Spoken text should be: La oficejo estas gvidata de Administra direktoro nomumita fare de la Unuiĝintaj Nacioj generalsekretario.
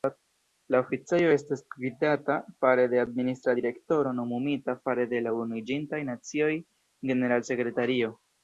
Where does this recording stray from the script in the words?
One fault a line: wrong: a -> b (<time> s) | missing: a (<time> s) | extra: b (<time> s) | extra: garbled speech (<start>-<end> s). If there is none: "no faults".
extra: fare (2.7 s)